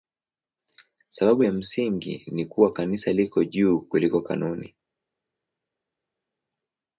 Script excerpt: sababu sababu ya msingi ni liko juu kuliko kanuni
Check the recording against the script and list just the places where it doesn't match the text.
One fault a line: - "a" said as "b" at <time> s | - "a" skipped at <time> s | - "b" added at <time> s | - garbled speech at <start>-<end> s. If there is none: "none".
- "sababu" skipped at 1.4 s
- "kuwa kanisa" added at 2.4 s